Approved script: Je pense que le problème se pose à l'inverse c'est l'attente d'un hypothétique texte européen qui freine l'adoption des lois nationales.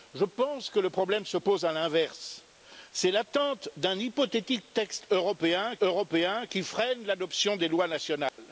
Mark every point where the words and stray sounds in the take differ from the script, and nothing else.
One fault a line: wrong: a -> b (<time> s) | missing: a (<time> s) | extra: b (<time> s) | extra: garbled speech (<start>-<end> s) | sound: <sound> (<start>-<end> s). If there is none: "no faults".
extra: européen (5.8 s)
sound: dropout (8.3-8.4 s)